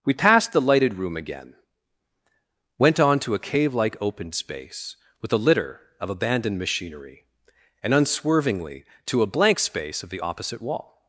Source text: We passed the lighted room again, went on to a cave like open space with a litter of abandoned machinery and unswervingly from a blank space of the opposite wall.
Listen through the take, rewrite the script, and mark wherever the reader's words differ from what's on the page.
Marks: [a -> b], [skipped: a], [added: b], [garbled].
We passed the lighted room again, went on to a cave like open space with a litter of abandoned machinery and unswervingly [from -> to] a blank space of the opposite wall.